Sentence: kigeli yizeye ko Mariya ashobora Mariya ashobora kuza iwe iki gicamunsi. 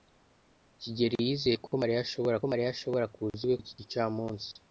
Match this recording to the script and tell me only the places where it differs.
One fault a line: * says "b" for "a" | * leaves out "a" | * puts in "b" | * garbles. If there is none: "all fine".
all fine